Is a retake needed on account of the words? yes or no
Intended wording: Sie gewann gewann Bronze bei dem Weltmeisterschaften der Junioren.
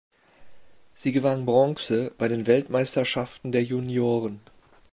yes